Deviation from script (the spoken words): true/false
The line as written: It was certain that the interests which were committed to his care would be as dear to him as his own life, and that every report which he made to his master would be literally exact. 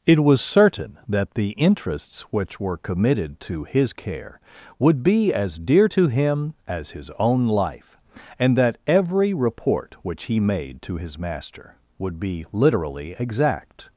false